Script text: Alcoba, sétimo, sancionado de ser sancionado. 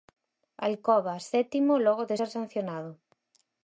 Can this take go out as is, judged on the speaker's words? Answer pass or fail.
fail